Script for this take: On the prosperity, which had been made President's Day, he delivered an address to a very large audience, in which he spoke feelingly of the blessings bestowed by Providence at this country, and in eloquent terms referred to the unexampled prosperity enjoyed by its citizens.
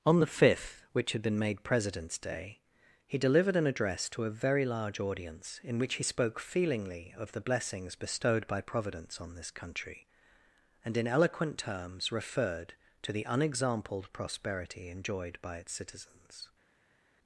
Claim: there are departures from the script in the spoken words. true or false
true